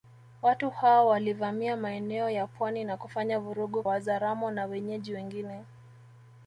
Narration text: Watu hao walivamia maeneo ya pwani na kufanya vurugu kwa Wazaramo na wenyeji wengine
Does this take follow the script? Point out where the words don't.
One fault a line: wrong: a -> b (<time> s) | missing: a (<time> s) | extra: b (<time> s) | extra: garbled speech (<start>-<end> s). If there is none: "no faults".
missing: kwa (3.8 s)